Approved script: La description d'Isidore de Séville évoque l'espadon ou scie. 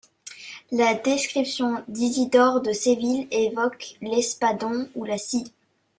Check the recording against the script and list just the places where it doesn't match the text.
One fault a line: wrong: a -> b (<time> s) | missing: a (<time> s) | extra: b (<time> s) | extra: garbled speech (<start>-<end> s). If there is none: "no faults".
extra: la (5.0 s)